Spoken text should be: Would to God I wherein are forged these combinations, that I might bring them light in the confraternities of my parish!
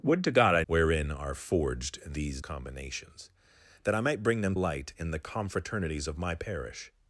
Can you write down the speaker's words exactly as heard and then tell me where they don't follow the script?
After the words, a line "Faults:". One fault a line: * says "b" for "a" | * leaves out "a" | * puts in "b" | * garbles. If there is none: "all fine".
Would to God I wherein are forged these combinations, that I might bring them light in the confraternities of my parish!
Faults:
all fine